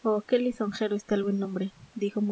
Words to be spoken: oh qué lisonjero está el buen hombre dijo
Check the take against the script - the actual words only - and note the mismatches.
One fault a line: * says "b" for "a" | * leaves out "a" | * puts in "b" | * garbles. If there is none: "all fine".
all fine